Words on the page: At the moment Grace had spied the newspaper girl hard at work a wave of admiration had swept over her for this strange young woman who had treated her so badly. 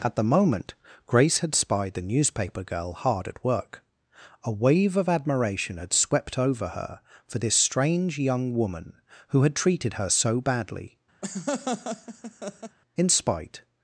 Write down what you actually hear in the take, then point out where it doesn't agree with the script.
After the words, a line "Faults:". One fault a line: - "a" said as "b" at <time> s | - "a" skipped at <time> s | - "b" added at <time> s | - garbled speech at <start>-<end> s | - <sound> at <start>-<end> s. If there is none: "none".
At the moment Grace had spied the newspaper girl hard at work a wave of admiration had swept over her for this strange young woman who had treated her so badly. In spite
Faults:
- laugh at 11.2-12.8 s
- "In spite" added at 12.9 s